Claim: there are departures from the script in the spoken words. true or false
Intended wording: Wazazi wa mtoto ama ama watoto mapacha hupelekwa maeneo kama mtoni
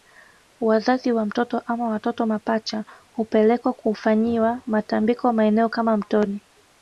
true